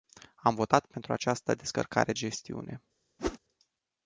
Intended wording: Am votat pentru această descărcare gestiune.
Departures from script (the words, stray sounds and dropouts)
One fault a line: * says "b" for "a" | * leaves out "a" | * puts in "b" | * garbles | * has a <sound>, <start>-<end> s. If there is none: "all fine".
* has a whoosh, 3.2-3.4 s